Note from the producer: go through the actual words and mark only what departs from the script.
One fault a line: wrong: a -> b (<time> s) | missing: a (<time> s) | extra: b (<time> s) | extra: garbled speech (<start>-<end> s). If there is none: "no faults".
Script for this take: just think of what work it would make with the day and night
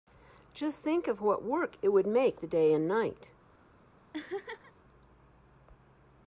missing: with (2.4 s)